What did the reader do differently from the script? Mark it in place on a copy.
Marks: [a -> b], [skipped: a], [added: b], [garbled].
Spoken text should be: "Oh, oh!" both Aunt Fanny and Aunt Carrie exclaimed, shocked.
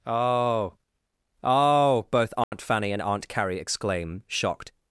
"Oh, oh!" both Aunt Fanny and Aunt Carrie [exclaimed, -> exclaim] shocked.